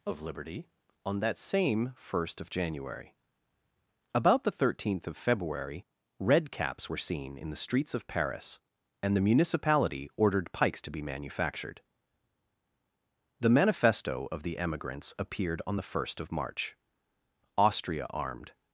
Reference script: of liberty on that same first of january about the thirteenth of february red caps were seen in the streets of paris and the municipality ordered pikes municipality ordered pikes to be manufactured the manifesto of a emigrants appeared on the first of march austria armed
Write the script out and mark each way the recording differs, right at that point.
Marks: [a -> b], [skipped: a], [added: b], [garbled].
of liberty on that same first of january about the thirteenth of february red caps were seen in the streets of paris and the municipality ordered pikes [skipped: municipality ordered pikes] to be manufactured the manifesto of [a -> the] emigrants appeared on the first of march austria armed